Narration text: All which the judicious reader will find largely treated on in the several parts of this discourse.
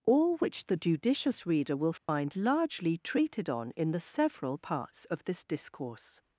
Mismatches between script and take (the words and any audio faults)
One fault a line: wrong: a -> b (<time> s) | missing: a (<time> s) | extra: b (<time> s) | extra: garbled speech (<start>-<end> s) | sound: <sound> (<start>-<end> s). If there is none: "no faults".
sound: dropout (2.0-2.1 s)